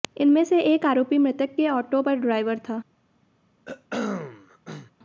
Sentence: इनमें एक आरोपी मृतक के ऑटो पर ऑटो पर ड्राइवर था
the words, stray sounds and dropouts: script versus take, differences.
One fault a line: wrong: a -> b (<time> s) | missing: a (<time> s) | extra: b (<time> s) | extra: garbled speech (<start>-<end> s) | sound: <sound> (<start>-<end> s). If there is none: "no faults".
extra: से (0.4 s)
missing: ऑटो पर (2.1 s)
sound: throat clearing (3.7-4.9 s)